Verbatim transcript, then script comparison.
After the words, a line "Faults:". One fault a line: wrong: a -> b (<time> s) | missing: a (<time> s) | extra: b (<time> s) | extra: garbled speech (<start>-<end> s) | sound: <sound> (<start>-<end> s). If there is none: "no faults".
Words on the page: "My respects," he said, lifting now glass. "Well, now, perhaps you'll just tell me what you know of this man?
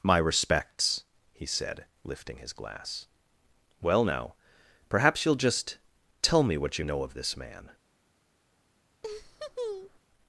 "My respects," he said, lifting his glass. "Well, now, perhaps you'll just tell me what you know of this man?
Faults:
wrong: now -> his (2.4 s)
sound: laugh (9.0-10.0 s)